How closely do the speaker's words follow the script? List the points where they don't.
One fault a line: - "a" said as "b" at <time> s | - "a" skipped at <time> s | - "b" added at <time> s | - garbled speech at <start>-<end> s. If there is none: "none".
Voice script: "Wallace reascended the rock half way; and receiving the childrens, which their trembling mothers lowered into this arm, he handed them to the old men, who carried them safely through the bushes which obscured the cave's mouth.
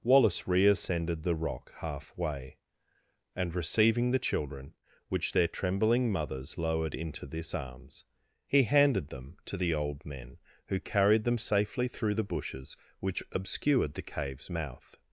- "childrens" said as "children" at 4.2 s
- "arm" said as "arms" at 7.5 s